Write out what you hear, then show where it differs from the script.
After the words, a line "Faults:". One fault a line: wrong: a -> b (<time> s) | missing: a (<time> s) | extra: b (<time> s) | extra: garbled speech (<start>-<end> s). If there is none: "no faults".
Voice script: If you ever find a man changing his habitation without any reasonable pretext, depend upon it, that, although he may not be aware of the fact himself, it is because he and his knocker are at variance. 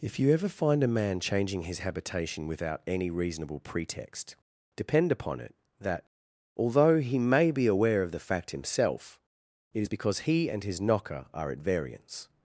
If you ever find a man changing his habitation without any reasonable pretext, depend upon it, that, although he may be aware of the fact himself, it is because he and his knocker are at variance.
Faults:
missing: not (7.5 s)